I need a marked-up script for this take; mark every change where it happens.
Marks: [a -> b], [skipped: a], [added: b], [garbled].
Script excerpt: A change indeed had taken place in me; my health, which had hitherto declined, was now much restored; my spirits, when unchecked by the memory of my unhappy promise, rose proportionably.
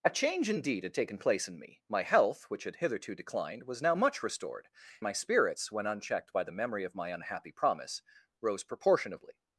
A change indeed had taken place in me; my health, which had hitherto declined, was now much restored; my spirits, when unchecked by the memory of my unhappy promise, rose proportionably.